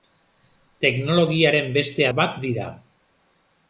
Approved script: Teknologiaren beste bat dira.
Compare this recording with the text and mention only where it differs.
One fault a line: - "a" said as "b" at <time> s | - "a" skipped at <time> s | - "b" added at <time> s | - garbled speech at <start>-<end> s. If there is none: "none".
none